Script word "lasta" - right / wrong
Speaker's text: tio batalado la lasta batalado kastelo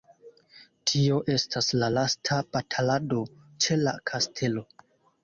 right